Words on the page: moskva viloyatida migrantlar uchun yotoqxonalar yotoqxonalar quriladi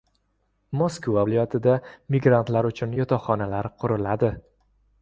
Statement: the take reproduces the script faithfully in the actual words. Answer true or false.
false